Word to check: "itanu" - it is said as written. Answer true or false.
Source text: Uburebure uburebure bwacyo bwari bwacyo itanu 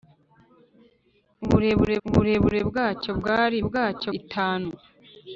true